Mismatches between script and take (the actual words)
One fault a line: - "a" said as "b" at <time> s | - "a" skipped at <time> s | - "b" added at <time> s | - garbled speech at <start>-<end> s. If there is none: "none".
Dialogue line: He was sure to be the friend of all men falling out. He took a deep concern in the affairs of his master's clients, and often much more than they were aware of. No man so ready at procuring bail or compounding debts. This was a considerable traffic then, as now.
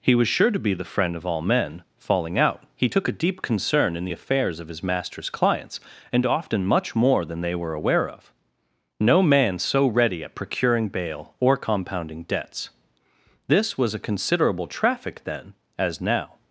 none